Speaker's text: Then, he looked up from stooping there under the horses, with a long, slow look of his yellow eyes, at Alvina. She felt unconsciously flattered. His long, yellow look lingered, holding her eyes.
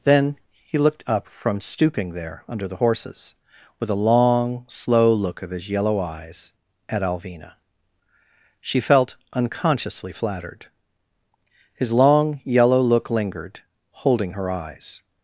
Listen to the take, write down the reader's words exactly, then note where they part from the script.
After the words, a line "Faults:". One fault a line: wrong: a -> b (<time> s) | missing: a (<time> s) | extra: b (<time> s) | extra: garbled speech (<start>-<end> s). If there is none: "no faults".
Then, he looked up from stooping there under the horses, with a long, slow look of his yellow eyes, at Alvina. She felt unconsciously flattered. His long, yellow look lingered, holding her eyes.
Faults:
no faults